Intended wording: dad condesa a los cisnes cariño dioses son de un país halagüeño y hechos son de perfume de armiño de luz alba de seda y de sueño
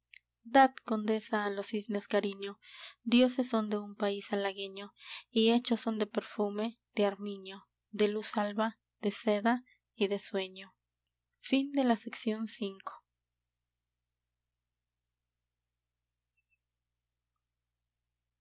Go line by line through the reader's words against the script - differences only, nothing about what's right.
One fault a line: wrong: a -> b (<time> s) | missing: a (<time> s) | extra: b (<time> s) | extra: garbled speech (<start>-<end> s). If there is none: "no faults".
no faults